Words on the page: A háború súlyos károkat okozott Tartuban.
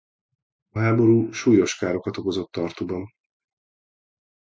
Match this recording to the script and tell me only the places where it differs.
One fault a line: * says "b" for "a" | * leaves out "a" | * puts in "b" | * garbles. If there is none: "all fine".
all fine